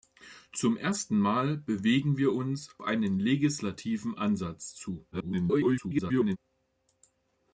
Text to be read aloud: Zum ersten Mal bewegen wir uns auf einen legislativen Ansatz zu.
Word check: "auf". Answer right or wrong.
wrong